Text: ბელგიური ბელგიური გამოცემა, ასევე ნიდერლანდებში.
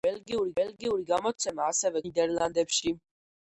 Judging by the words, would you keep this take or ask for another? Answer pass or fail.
pass